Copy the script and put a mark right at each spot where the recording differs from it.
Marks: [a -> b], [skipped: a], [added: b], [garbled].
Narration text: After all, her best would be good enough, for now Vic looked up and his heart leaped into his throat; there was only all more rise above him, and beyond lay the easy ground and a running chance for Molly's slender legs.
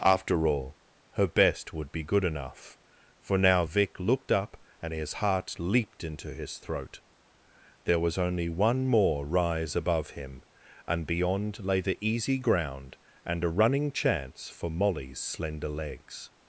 After all, her best would be good enough, for now Vic looked up and his heart leaped into his throat; there was only [all -> one] more rise above him, and beyond lay the easy ground and a running chance for Molly's slender legs.